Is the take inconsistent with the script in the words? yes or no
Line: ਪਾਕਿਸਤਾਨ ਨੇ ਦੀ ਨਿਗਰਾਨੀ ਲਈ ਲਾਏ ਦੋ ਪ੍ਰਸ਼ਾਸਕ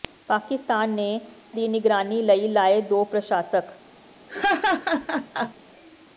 no